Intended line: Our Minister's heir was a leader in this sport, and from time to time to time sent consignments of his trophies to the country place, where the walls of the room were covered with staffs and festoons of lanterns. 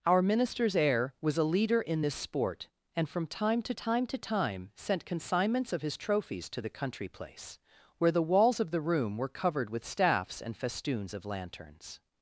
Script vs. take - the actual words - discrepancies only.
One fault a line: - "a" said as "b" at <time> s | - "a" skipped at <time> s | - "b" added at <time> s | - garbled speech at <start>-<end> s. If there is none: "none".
none